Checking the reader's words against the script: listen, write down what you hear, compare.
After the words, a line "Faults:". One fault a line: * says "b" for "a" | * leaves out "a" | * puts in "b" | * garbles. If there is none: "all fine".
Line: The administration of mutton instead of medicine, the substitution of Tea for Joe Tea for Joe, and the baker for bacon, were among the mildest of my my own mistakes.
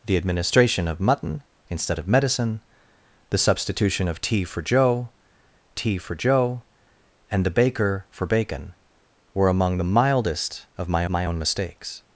The administration of mutton instead of medicine, the substitution of Tea for Joe Tea for Joe, and the baker for bacon, were among the mildest of my my own mistakes.
Faults:
all fine